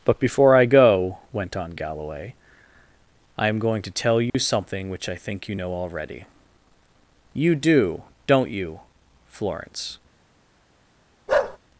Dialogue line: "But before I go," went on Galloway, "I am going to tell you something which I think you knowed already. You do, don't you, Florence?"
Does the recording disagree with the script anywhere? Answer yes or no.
yes